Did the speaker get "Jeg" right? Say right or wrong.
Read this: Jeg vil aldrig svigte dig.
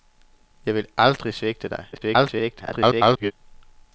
right